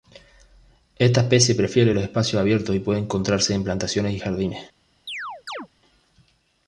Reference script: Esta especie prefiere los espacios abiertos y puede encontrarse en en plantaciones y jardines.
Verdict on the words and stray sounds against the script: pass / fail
fail